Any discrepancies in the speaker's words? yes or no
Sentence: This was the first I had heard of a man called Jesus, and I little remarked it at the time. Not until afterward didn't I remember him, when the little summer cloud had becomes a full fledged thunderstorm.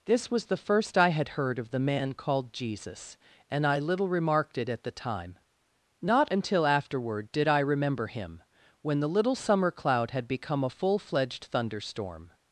yes